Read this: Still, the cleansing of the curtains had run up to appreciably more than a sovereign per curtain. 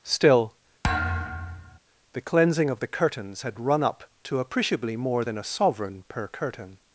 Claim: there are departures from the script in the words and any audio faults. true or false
true